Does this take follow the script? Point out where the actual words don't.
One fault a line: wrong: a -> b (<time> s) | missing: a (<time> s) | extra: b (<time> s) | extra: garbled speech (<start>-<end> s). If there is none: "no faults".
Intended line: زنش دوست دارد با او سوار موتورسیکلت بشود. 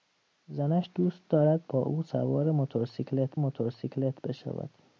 extra: موتورسیکلت (3.4 s)